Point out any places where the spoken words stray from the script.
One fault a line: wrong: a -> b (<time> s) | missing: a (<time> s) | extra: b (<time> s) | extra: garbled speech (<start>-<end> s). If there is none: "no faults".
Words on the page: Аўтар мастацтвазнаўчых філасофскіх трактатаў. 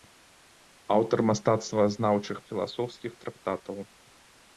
no faults